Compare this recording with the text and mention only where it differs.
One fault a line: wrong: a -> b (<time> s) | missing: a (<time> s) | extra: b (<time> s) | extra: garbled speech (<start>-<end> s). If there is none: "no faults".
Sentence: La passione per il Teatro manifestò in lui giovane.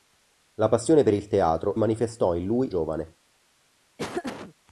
no faults